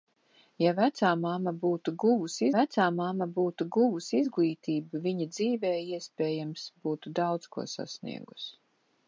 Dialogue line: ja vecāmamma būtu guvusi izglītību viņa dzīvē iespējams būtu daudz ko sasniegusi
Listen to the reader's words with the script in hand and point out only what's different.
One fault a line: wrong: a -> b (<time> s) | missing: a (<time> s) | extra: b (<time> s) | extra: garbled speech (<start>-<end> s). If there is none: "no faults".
extra: vecāmamma būtu guvusi (2.5 s)